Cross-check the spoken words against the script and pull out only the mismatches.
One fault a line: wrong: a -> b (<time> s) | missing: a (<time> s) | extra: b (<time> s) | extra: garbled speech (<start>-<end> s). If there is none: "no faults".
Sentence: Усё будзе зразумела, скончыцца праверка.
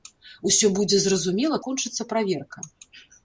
no faults